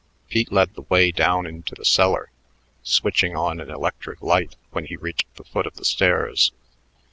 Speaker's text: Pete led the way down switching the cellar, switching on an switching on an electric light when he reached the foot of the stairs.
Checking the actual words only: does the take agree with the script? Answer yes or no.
no